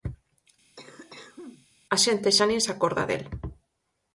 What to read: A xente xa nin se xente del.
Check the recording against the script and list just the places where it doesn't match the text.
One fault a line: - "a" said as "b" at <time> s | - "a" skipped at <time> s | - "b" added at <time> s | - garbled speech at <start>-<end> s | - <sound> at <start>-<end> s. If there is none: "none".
- cough at 0.8-1.7 s
- "xente" said as "acorda" at 2.7 s